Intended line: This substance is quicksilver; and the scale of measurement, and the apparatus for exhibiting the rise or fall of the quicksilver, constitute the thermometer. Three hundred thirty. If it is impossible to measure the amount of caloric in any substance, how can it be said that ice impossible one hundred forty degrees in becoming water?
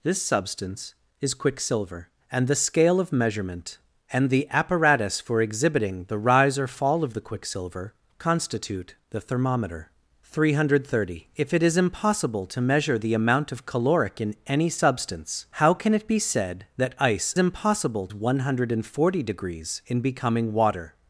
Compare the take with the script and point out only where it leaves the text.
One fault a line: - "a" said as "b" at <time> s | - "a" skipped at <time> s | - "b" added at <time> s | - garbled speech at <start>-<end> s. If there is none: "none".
none